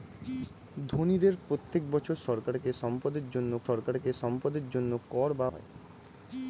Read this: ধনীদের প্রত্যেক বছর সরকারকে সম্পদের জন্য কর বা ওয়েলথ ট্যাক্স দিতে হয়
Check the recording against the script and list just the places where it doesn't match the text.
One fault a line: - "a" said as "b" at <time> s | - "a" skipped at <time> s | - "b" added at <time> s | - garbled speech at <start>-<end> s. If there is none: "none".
- "কর বা ওয়েলথ ট্যাক্স দিতে" said as "সরকারকে সম্পদের জন্য কর বা" at 3.7 s